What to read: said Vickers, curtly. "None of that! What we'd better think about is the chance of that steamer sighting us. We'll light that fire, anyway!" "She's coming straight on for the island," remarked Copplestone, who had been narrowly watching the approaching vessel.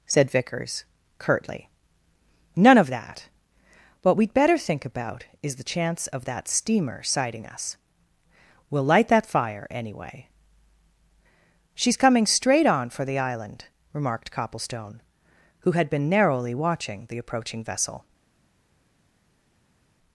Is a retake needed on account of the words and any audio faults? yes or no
no